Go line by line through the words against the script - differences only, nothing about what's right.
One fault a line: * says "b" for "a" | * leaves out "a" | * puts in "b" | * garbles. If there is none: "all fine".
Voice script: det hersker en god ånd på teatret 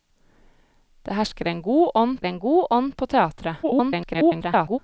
* puts in "en god ånd"
* garbles